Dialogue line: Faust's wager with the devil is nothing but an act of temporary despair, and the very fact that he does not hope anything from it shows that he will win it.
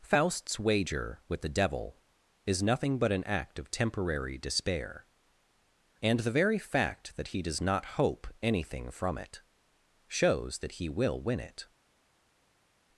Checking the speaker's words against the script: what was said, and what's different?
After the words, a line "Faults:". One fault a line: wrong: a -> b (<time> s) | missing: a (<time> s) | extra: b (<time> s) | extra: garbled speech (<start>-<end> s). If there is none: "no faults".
Faust's wager with the devil is nothing but an act of temporary despair, and the very fact that he does not hope anything from it shows that he will win it.
Faults:
no faults